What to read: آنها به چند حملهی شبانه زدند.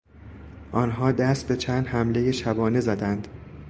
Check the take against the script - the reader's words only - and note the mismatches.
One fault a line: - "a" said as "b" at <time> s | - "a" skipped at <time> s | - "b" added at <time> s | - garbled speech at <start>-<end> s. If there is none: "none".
- "دست" added at 1.1 s